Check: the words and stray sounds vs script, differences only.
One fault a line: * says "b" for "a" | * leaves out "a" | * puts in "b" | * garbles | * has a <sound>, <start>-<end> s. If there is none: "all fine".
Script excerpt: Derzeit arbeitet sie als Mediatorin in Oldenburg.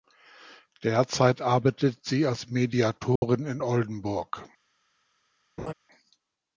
* has a dropout, 3.2-3.2 s
* has a laugh, 5.6-5.7 s